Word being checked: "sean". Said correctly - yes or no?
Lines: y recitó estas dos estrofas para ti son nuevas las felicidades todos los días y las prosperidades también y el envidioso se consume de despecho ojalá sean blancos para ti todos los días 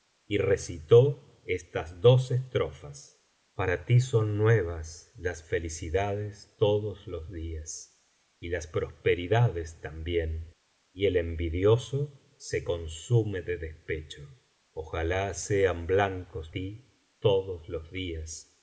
yes